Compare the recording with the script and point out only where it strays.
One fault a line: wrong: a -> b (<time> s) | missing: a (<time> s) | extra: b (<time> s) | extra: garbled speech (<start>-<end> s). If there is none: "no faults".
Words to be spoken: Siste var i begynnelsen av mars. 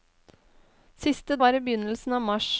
no faults